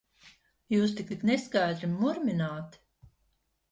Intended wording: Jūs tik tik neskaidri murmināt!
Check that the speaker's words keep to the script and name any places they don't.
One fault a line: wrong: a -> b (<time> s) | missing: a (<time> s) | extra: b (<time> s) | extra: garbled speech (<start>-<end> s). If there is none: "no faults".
no faults